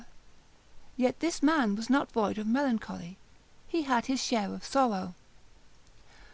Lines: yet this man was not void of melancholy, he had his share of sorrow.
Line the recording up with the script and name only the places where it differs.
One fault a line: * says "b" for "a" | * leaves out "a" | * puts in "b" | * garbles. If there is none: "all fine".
all fine